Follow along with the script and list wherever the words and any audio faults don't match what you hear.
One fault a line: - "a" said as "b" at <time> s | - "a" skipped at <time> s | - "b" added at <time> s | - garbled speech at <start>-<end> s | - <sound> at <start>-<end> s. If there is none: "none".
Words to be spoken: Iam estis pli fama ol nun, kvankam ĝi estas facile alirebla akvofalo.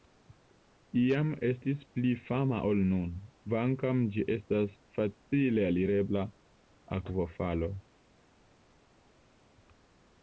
none